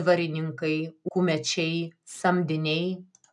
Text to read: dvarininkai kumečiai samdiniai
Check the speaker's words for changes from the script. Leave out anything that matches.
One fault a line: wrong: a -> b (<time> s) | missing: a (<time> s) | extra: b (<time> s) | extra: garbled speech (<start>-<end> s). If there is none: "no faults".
no faults